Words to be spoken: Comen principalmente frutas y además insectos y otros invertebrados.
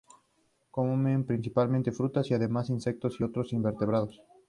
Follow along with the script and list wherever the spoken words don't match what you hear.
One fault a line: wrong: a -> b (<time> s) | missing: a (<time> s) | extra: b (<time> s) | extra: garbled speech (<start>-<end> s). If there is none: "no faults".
no faults